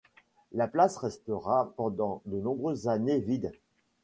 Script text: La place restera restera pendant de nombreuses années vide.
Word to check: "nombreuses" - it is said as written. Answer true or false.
true